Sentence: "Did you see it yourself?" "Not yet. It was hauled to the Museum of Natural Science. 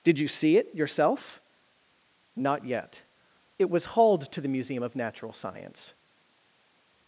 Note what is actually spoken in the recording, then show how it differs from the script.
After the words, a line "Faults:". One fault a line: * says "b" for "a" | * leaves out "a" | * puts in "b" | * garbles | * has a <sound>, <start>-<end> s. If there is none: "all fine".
"Did you see it yourself?" "Not yet. It was hauled to the Museum of Natural Science.
Faults:
all fine